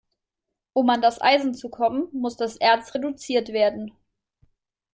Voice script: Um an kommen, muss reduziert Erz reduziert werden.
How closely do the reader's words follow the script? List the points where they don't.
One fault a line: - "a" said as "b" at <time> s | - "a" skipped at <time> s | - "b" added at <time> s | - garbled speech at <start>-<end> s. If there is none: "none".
- "das Eisen zu" added at 1.0 s
- "reduziert" said as "das" at 2.4 s